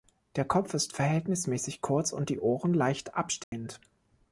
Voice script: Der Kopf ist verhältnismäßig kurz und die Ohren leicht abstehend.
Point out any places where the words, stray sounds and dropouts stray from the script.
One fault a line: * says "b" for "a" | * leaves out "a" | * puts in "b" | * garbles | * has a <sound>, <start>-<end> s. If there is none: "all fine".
* has a dropout, 3.4-3.5 s